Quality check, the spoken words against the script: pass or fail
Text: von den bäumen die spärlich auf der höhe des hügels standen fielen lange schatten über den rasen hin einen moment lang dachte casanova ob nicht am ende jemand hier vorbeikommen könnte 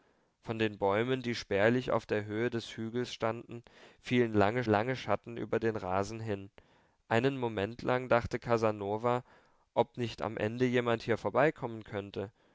fail